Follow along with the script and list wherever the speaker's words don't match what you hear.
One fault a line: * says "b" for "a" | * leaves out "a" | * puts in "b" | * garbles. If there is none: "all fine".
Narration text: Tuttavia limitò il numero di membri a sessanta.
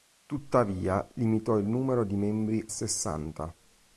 * leaves out "a"